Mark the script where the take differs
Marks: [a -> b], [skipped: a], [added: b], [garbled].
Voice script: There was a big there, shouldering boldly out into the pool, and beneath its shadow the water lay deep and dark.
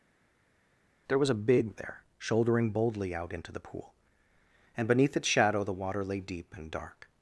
There was a big there, shouldering boldly out into the pool, and beneath its shadow the water lay deep and dark.